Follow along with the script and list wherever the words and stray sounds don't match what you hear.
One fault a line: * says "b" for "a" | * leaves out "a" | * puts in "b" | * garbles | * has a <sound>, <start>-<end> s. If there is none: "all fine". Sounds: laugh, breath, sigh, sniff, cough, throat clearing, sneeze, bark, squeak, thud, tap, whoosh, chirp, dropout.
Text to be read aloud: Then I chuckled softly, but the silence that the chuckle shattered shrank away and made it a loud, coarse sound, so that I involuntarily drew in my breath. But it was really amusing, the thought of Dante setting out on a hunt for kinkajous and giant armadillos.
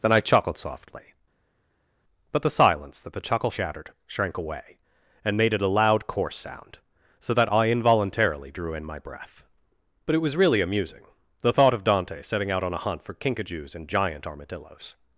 all fine